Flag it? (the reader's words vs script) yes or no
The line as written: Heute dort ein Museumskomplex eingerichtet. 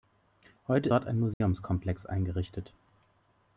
no